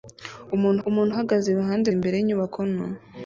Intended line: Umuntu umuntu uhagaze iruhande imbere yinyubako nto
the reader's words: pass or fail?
pass